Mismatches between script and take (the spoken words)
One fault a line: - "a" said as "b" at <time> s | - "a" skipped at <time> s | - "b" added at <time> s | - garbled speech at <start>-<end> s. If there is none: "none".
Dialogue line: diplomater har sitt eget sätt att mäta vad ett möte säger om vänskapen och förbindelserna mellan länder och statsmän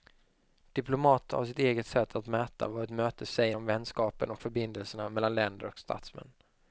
none